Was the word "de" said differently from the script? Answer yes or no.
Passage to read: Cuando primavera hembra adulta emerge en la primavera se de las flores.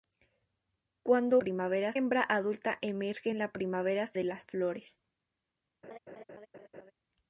no